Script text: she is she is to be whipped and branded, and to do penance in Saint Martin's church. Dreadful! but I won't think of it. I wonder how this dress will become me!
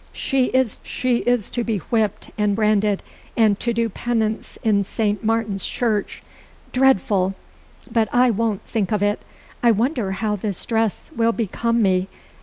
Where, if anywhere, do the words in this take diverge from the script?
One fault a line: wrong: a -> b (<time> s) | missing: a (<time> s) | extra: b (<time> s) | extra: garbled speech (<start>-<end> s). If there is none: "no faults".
no faults